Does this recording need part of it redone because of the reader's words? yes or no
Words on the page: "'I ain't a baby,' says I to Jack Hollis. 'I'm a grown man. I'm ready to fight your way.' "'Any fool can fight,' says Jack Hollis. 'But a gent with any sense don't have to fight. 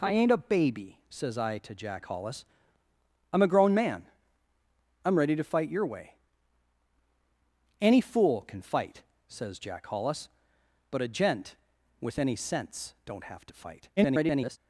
yes